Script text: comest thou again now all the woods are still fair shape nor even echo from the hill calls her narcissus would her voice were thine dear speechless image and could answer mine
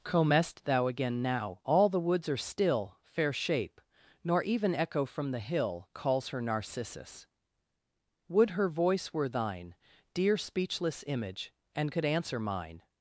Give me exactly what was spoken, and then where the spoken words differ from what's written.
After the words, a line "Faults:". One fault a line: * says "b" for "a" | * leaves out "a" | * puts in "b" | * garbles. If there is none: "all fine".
comest thou again now all the woods are still fair shape nor even echo from the hill calls her narcissus would her voice were thine dear speechless image and could answer mine
Faults:
all fine